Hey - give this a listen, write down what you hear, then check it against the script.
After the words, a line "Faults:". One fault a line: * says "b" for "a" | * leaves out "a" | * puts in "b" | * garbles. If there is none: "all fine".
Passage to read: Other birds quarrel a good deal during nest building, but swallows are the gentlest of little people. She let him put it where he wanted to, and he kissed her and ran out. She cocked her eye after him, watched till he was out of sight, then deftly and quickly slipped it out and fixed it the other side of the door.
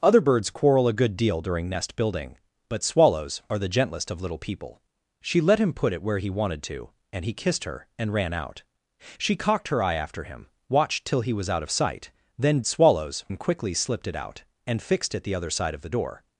Other birds quarrel a good deal during nest building, but swallows are the gentlest of little people. She let him put it where he wanted to, and he kissed her and ran out. She cocked her eye after him, watched till he was out of sight, then swallows and quickly slipped it out and fixed it the other side of the door.
Faults:
* says "swallows" for "deftly"